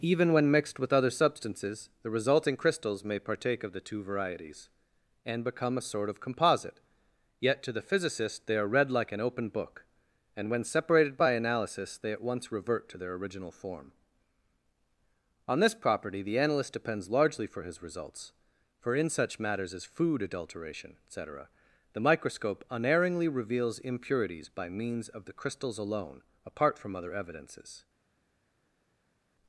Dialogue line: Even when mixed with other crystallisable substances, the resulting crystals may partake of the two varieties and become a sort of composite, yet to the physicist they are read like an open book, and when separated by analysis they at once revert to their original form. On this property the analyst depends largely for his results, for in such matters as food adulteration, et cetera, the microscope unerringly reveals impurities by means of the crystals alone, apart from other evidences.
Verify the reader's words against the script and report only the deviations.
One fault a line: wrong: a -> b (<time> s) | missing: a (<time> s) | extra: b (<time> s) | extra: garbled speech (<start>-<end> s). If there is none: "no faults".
missing: crystallisable (1.1 s)